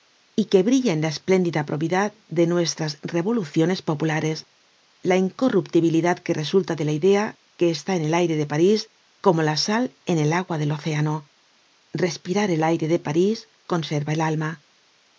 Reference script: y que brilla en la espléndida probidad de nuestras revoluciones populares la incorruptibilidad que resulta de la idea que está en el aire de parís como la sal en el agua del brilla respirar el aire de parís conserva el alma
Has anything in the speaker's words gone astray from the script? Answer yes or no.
yes